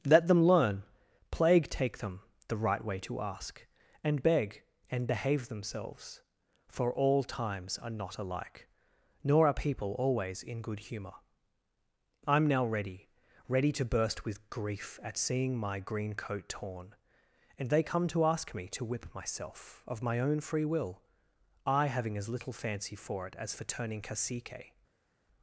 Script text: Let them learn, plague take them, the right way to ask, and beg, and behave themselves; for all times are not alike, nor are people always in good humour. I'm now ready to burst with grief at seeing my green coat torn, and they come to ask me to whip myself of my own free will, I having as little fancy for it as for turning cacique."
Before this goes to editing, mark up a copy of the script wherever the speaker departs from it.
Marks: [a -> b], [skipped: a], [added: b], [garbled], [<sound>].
Let them learn, plague take them, the right way to ask, and beg, and behave themselves; for all times are not alike, nor are people always in good humour. I'm now ready [added: ready] to burst with grief at seeing my green coat torn, and they come to ask me to whip myself of my own free will, I having as little fancy for it as for turning cacique."